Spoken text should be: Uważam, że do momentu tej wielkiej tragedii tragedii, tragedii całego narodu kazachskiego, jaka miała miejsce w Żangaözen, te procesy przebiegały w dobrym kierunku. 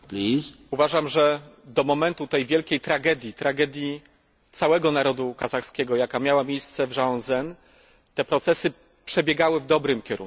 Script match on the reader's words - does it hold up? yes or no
no